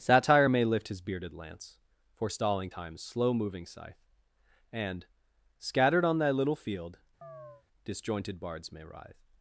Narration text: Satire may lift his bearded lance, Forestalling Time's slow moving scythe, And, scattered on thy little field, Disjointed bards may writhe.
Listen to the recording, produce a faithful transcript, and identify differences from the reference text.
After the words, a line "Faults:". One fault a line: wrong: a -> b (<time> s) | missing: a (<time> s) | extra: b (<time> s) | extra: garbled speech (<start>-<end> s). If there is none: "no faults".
Satire may lift his bearded lance, Forestalling Time's slow moving scythe, And, scattered on thy little field, Disjointed bards may writhe.
Faults:
no faults